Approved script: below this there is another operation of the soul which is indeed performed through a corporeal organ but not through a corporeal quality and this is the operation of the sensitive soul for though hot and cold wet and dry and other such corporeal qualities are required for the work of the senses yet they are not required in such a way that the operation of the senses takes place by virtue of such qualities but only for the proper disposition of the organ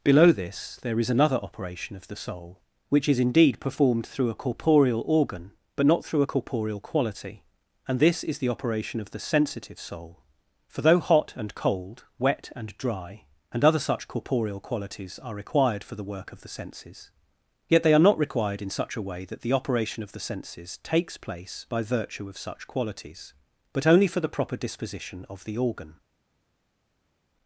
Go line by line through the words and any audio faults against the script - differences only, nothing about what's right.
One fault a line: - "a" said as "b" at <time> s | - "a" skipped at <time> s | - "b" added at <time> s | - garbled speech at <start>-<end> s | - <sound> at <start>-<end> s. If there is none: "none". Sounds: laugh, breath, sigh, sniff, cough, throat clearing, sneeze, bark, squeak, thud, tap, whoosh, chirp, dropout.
none